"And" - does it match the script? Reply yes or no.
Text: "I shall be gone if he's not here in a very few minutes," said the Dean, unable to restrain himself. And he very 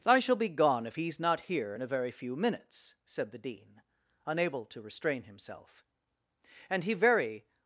yes